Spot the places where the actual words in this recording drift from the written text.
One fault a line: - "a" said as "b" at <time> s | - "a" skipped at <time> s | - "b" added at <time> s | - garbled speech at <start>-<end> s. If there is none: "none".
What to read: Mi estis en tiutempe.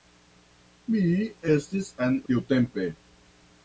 none